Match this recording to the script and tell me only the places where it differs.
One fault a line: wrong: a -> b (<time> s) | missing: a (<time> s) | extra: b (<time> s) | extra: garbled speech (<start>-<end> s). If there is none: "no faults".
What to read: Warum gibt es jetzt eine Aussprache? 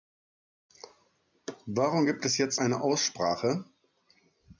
no faults